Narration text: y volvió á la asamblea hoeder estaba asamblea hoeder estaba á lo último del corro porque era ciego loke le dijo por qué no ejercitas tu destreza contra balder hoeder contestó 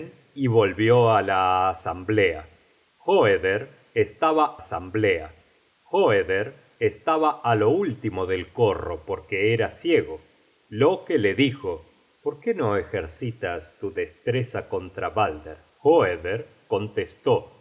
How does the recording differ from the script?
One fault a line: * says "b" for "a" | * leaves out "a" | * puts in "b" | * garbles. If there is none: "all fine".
all fine